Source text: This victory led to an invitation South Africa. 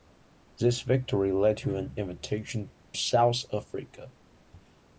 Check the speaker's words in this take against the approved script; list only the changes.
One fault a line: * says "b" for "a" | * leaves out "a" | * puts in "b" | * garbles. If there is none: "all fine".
all fine